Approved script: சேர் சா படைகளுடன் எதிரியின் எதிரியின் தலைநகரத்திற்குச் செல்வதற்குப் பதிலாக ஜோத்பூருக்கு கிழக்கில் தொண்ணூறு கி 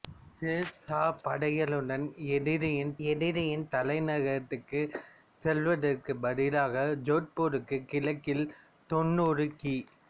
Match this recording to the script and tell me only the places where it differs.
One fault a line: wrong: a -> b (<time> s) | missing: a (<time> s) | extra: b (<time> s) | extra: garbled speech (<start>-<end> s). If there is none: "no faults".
no faults